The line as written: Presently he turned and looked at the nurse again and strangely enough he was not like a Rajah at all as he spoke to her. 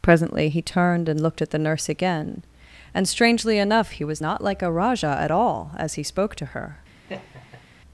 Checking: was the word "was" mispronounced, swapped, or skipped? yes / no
no